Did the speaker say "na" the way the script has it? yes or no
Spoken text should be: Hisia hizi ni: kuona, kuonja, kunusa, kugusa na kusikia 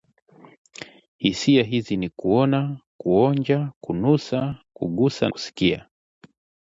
no